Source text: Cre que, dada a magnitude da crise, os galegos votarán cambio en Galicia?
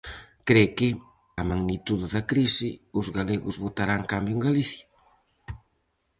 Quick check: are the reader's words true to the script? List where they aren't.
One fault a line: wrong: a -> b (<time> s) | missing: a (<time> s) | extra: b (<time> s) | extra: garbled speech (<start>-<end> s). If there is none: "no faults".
missing: dada (0.9 s)